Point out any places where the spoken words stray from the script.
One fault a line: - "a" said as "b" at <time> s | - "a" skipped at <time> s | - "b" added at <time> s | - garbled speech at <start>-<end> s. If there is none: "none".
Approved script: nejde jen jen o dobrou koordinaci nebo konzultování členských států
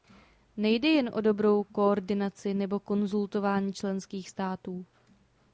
- "jen" skipped at 1.1 s